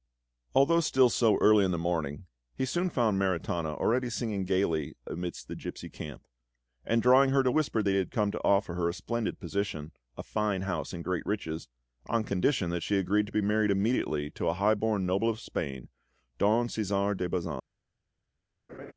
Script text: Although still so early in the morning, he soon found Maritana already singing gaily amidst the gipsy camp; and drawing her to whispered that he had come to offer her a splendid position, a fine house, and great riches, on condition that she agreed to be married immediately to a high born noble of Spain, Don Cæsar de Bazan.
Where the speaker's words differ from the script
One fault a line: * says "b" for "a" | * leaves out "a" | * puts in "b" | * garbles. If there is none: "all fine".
all fine